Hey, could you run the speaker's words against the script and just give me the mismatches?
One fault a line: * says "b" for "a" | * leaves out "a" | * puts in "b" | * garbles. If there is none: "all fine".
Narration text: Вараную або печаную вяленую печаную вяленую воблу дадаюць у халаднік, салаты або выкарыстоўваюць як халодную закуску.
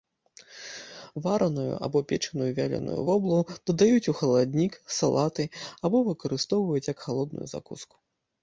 * leaves out "печаную вяленую"